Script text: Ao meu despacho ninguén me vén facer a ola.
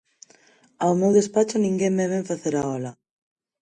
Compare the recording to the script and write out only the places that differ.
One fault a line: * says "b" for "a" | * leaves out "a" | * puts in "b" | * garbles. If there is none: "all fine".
all fine